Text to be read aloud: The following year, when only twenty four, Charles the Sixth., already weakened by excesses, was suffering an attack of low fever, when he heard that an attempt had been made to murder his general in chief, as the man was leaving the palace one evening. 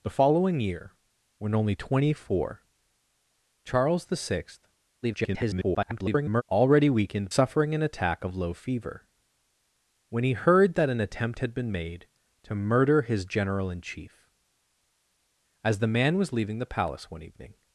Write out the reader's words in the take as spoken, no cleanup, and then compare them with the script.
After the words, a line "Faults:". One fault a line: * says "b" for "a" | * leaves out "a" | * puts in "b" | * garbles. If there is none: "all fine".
The following year, when only twenty four, Charles the Sixth., [garbled] already weakened suffering an attack of low fever, when he heard that an attempt had been made to murder his general in chief, as the man was leaving the palace one evening.
Faults:
* garbles
* leaves out "by excesses was"